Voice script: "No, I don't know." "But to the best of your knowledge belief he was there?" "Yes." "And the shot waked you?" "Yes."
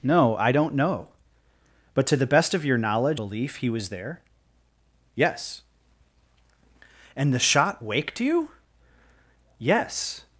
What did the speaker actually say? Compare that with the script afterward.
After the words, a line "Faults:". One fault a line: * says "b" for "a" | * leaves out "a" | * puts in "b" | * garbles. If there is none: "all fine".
"No, I don't know." "But to the best of your knowledge belief he was there?" "Yes." "And the shot waked you?" "Yes."
Faults:
all fine